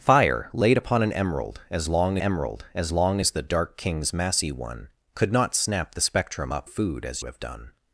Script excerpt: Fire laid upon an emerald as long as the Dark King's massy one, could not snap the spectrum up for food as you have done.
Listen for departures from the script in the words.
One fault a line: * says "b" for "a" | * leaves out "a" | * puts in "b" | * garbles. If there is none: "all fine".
* puts in "emerald"
* puts in "long as"
* leaves out "for"
* leaves out "you"